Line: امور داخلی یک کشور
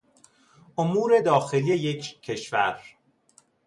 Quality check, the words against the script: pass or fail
pass